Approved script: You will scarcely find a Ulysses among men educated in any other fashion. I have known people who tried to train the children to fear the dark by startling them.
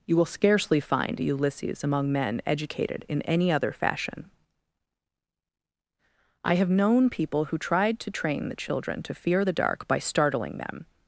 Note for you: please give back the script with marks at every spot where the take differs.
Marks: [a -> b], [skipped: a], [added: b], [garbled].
You will scarcely find a Ulysses among men educated in any other fashion. I have known people who tried to train the children to fear the dark by startling them.